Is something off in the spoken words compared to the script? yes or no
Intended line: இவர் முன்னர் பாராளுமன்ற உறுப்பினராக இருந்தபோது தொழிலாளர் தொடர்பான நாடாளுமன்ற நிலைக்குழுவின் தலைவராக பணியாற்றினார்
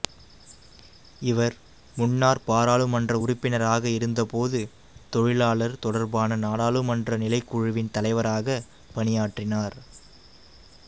no